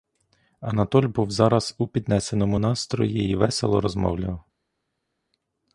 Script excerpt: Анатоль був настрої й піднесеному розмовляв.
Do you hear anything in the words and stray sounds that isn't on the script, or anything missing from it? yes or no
yes